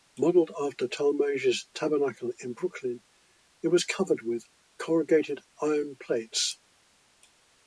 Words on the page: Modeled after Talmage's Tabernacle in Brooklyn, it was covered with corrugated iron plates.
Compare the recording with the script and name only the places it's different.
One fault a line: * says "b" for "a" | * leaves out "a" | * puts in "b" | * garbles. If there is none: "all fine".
all fine